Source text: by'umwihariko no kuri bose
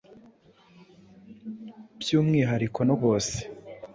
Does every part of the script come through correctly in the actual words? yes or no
no